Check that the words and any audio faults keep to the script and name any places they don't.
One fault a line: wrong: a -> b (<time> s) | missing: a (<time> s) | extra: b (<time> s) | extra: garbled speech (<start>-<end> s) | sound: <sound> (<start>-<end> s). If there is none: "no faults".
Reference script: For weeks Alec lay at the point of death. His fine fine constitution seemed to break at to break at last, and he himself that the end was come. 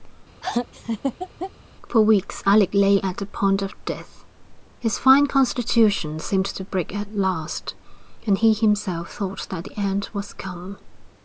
sound: laugh (0.4-1.5 s)
missing: fine (5.3 s)
missing: to break at (7.1 s)
extra: thought (9.1 s)